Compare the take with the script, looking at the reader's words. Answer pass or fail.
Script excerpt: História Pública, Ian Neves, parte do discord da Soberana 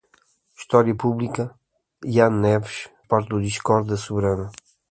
pass